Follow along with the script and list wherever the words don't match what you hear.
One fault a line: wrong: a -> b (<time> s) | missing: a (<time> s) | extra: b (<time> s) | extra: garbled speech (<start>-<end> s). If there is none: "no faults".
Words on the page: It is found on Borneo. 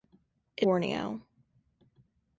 missing: is found on (0.7 s)